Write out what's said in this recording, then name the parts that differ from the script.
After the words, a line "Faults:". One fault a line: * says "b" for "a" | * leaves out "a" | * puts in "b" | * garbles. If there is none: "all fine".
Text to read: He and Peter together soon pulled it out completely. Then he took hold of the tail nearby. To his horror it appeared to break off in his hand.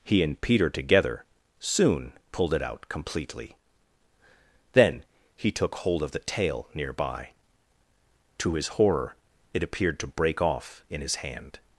He and Peter together soon pulled it out completely. Then he took hold of the tail nearby. To his horror it appeared to break off in his hand.
Faults:
all fine